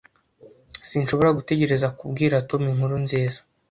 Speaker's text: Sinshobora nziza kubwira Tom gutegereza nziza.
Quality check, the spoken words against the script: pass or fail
fail